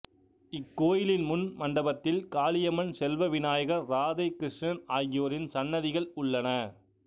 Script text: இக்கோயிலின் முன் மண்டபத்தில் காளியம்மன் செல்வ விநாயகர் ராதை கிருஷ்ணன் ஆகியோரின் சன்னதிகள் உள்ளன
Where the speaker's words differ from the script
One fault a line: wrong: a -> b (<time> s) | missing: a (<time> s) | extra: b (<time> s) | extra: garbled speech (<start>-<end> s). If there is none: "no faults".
no faults